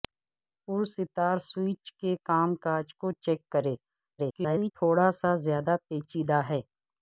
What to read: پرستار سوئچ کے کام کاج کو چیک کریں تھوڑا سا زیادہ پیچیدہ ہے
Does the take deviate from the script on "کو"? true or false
false